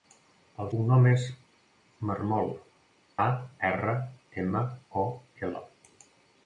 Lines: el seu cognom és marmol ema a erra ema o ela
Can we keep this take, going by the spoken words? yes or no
no